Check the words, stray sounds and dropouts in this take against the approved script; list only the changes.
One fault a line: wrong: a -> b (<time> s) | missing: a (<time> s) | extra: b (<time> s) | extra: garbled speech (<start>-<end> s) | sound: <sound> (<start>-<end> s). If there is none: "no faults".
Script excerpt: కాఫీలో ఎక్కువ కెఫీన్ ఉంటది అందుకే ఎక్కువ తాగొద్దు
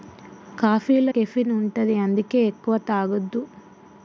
missing: ఎక్కువ (1.1 s)